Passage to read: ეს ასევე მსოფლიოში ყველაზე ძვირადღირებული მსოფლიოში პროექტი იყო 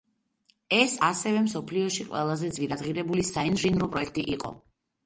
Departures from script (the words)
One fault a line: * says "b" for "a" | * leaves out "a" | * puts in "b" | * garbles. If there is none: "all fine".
* says "საინჟინრო" for "მსოფლიოში"